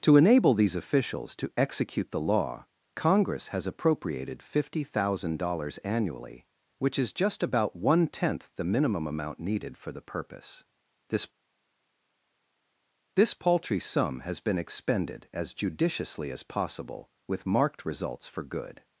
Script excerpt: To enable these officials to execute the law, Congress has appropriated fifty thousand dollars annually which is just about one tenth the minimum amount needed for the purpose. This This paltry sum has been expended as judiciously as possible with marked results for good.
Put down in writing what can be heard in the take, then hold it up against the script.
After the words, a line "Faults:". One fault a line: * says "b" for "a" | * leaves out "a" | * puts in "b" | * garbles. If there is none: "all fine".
To enable these officials to execute the law, Congress has appropriated fifty thousand dollars annually which is just about one tenth the minimum amount needed for the purpose. This This paltry sum has been expended as judiciously as possible with marked results for good.
Faults:
all fine